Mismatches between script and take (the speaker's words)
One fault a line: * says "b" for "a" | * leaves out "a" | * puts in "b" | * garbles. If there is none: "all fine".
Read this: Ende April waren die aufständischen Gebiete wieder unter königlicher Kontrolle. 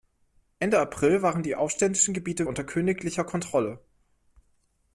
* leaves out "wieder"